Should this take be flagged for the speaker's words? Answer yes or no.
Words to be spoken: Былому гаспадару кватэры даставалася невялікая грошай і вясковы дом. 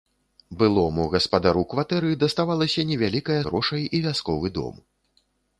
no